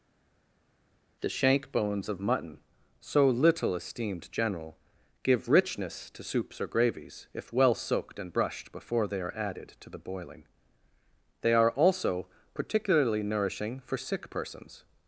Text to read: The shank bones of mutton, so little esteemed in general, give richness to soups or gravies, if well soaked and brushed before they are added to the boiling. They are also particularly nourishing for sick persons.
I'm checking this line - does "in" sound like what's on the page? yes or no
no